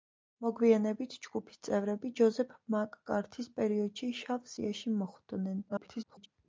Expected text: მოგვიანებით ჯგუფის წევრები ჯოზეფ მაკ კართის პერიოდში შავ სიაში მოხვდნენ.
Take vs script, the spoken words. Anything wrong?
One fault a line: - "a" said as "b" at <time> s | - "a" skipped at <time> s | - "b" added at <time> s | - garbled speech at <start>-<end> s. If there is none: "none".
- garbled speech at 5.7-6.3 s